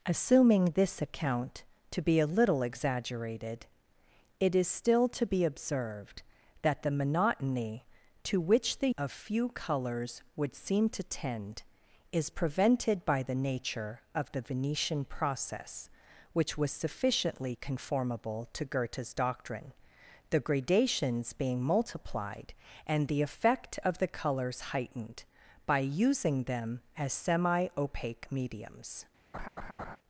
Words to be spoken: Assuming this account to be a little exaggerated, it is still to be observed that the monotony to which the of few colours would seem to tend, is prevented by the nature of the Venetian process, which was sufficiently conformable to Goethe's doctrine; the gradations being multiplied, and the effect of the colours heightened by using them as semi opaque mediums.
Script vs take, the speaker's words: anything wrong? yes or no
no